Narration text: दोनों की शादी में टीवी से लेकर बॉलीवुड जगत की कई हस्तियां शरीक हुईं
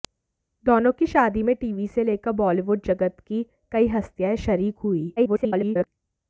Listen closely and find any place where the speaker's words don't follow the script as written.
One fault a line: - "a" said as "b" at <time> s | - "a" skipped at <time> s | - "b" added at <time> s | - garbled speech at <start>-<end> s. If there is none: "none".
- garbled speech at 5.2-5.9 s